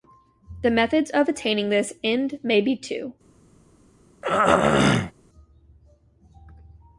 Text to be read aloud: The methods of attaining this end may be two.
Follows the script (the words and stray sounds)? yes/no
no